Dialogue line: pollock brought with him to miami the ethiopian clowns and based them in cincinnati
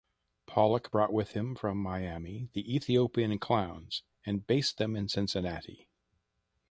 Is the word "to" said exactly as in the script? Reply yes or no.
no